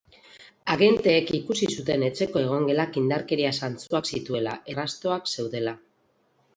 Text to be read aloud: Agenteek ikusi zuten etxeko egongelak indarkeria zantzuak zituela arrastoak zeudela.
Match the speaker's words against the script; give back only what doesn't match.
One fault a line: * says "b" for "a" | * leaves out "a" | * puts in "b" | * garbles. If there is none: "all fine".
all fine